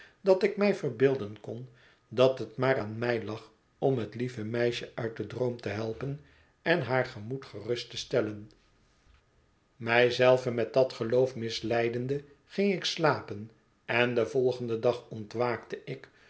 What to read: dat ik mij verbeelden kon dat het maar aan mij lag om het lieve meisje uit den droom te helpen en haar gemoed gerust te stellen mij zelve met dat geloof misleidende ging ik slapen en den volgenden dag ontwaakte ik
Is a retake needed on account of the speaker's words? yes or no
no